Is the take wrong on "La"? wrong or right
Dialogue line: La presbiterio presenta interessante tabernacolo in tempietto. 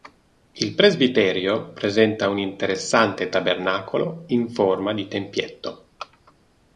wrong